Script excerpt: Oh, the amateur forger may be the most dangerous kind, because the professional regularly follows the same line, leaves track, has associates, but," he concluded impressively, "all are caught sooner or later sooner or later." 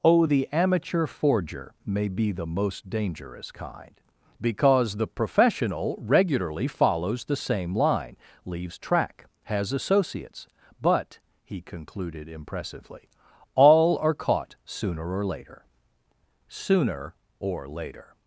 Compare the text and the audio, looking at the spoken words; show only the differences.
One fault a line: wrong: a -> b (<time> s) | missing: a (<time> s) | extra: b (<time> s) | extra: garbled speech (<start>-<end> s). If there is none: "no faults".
no faults